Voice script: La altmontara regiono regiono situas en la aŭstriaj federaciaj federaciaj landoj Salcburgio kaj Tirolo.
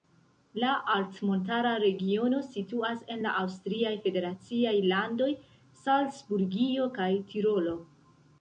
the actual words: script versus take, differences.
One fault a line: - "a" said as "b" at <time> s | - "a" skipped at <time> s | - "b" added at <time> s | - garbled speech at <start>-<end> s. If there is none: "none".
- "regiono" skipped at 2.4 s
- "federaciaj" skipped at 4.7 s